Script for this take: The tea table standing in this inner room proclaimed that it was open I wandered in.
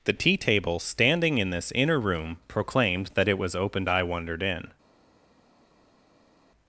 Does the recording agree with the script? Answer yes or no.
yes